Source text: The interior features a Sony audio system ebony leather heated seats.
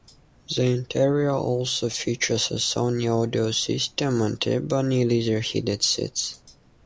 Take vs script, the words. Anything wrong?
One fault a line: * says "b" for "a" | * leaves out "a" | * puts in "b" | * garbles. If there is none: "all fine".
* puts in "also"
* puts in "and"